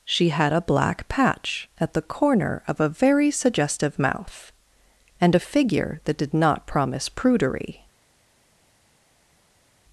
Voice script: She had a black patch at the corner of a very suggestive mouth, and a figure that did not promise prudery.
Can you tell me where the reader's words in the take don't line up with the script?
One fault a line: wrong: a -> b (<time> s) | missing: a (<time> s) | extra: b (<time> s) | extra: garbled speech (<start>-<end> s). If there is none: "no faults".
no faults